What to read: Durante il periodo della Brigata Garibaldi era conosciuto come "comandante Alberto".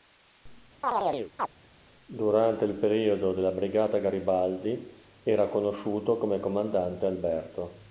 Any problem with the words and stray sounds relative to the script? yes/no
yes